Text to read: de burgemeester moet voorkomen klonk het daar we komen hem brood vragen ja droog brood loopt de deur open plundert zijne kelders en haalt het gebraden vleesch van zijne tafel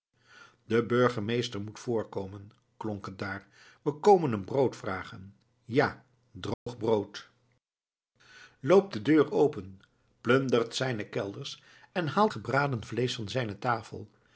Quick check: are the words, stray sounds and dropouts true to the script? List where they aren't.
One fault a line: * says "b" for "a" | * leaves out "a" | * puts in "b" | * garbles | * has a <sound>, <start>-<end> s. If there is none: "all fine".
* has a dropout, 6.5-6.7 s
* leaves out "het"